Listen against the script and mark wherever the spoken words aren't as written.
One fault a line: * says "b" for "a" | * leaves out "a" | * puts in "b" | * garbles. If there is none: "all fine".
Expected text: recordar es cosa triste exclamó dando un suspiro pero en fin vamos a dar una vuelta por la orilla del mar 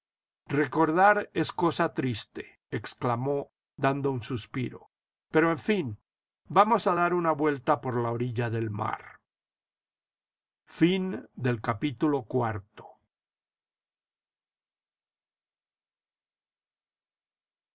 all fine